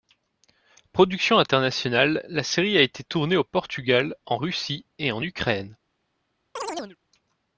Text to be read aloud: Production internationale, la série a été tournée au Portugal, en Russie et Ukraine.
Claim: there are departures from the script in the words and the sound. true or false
true